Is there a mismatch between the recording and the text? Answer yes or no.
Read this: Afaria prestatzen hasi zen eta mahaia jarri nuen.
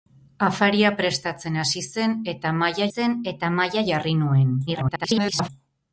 yes